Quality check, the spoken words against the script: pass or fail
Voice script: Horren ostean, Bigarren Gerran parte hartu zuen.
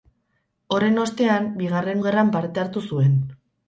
pass